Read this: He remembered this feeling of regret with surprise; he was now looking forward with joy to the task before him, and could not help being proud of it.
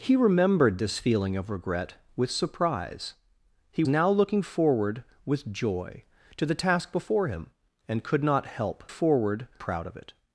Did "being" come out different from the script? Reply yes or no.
yes